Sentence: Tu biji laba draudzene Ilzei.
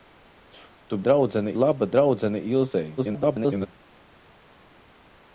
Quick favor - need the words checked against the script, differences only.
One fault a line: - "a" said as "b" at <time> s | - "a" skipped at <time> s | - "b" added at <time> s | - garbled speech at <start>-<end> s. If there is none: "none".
- "biji" said as "draudzene" at 1.0 s
- garbled speech at 3.0-3.7 s